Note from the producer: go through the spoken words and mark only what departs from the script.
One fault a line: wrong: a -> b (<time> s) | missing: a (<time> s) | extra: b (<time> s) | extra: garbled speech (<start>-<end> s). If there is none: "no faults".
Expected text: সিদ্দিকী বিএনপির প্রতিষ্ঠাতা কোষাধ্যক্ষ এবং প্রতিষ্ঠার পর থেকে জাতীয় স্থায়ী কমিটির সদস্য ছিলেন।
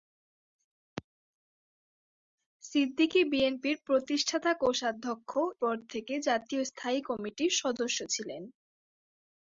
missing: এবং প্রতিষ্ঠার (5.3 s)